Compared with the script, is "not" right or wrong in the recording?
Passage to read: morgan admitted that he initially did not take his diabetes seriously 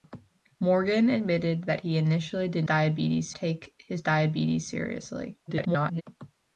wrong